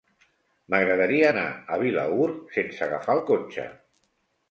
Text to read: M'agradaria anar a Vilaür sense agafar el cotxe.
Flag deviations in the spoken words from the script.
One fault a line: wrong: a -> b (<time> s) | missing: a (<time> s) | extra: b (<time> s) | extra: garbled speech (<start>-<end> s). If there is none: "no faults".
no faults